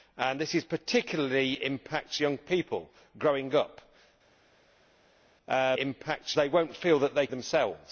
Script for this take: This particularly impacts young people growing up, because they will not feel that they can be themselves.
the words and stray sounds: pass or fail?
fail